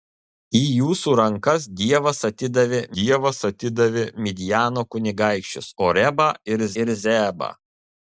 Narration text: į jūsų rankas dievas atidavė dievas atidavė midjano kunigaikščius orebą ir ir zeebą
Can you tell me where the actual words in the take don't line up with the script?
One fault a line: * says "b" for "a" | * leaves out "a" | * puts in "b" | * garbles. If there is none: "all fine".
all fine